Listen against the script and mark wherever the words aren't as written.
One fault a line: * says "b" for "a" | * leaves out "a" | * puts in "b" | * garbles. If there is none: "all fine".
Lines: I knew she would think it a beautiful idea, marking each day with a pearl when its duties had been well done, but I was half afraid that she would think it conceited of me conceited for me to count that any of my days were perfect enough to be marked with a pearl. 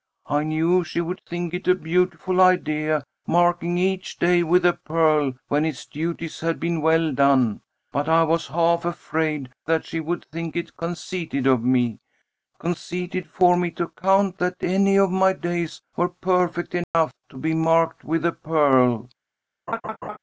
all fine